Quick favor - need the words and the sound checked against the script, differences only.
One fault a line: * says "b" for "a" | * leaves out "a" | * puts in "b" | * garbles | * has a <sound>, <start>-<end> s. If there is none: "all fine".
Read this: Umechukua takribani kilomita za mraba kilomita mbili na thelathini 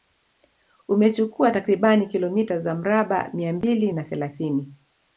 * says "mia" for "kilomita"